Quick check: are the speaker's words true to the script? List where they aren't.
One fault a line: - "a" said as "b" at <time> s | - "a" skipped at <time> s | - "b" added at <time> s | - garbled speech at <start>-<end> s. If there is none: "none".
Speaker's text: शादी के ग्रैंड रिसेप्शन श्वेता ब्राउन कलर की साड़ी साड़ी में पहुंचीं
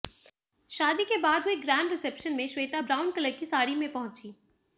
- "बाद हुए" added at 1.2 s
- "में" added at 2.4 s
- "साड़ी" skipped at 3.7 s